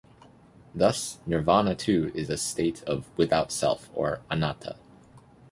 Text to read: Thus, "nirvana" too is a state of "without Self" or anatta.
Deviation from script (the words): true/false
false